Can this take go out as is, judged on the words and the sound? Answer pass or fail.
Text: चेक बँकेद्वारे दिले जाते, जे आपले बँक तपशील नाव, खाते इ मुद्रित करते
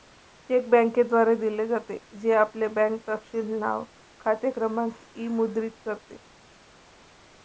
fail